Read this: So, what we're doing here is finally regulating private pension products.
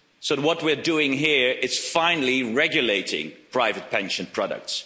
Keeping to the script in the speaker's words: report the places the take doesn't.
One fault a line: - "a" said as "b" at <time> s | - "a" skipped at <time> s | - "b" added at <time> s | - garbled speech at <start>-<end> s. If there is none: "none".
none